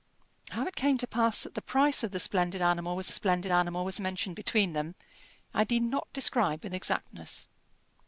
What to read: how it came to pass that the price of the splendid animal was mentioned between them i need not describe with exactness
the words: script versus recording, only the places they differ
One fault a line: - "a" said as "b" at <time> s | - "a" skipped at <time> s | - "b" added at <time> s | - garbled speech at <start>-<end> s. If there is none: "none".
- "splendid animal was" added at 3.1 s